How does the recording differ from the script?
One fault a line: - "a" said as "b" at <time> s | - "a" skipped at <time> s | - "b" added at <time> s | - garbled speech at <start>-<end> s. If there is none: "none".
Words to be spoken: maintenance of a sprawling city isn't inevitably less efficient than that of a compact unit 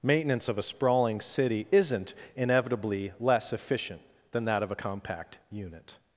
none